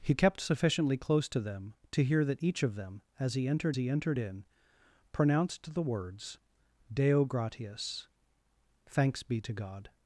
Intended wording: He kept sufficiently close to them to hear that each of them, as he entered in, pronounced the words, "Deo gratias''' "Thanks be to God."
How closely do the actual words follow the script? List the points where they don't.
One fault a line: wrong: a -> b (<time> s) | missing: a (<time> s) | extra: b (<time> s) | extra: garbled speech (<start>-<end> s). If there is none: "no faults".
extra: he entered (3.7 s)